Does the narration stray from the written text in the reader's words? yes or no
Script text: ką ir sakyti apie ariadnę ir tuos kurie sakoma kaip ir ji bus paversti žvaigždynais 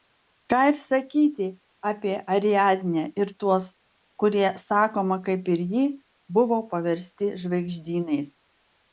yes